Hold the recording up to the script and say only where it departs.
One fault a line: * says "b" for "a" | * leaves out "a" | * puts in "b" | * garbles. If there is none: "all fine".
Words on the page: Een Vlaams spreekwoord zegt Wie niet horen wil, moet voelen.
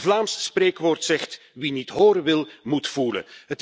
all fine